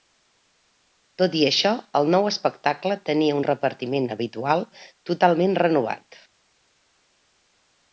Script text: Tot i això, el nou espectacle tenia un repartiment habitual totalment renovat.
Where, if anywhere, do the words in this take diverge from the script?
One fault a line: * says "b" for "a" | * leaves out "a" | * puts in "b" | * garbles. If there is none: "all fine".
all fine